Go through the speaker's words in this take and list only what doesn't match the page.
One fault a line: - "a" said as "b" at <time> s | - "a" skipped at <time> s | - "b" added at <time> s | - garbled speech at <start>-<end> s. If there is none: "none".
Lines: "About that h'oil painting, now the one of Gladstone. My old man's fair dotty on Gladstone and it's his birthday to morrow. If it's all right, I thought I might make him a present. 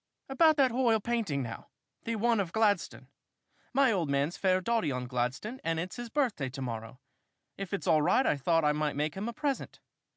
none